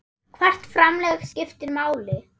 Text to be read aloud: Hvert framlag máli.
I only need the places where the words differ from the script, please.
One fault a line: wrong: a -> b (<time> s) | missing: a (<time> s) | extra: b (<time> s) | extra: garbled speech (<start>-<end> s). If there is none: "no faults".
extra: skiptir (1.3 s)